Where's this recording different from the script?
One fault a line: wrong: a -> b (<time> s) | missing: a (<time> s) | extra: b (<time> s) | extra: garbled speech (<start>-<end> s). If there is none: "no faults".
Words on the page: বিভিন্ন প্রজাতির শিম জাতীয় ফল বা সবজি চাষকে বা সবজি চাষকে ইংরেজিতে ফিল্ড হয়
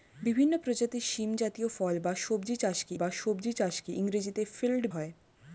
no faults